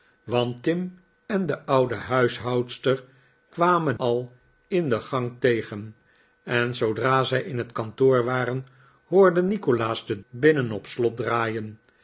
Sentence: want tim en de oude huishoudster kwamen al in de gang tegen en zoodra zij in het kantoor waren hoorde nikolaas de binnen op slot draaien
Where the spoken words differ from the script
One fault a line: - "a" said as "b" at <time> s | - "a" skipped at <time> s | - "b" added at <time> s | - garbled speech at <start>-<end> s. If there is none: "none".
none